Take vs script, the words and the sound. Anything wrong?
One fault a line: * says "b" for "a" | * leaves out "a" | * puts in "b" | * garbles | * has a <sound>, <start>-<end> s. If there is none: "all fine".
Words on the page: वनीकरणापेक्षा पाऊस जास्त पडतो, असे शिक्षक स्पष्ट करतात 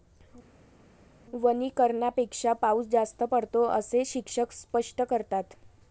all fine